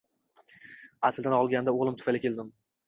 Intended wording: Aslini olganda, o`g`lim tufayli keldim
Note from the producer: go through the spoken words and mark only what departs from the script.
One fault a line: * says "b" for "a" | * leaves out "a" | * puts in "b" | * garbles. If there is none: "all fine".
all fine